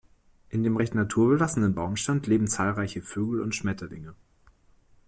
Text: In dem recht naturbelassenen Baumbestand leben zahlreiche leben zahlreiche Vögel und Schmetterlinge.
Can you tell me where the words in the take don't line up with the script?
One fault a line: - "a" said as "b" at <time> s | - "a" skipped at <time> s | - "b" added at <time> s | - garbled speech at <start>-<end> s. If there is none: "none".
- "leben zahlreiche" skipped at 3.0 s